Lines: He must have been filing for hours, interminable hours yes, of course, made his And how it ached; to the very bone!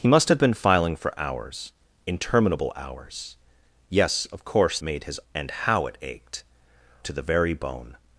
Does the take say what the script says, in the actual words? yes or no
yes